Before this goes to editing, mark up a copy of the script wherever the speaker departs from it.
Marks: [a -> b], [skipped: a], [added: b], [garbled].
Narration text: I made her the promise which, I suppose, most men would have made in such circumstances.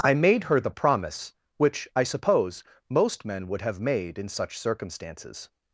I made her the promise which, I suppose, most men would have made in such circumstances.